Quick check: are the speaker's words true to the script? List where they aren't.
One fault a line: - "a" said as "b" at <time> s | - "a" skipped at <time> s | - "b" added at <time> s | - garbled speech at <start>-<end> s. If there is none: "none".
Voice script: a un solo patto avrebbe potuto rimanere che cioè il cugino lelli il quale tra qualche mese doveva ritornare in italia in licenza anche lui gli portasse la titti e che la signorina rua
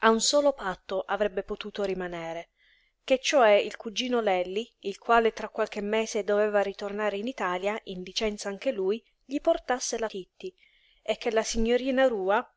none